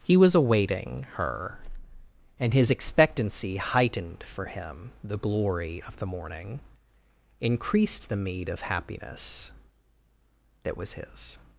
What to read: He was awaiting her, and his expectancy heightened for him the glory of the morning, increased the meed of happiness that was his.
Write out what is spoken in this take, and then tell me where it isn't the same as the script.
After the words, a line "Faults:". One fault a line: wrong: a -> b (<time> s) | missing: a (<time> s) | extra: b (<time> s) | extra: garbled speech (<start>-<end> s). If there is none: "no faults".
He was awaiting her, and his expectancy heightened for him the glory of the morning, increased the meed of happiness that was his.
Faults:
no faults